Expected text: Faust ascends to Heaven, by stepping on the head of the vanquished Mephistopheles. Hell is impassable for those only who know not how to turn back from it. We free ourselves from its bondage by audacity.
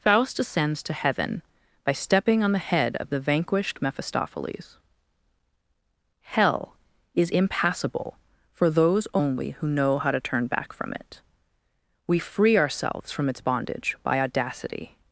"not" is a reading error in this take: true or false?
true